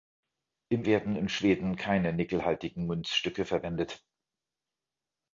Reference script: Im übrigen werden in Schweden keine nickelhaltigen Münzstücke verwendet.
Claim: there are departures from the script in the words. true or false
true